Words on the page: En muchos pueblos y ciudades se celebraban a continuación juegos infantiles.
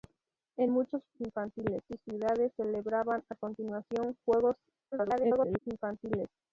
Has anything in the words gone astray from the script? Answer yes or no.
yes